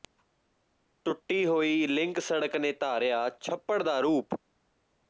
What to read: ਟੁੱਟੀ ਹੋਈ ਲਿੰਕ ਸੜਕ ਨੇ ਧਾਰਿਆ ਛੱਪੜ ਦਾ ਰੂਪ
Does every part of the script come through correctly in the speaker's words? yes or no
yes